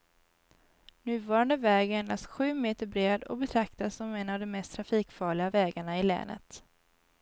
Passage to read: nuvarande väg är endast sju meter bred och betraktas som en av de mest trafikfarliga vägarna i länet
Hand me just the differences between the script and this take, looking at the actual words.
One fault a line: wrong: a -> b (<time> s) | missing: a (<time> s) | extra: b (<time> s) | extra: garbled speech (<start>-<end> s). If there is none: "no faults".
no faults